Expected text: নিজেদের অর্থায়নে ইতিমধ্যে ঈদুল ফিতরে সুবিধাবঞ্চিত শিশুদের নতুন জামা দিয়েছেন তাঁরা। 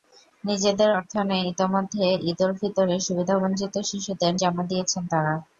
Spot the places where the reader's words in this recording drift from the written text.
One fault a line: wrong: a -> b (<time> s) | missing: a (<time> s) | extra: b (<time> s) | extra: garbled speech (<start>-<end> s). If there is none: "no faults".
missing: নতুন (4.3 s)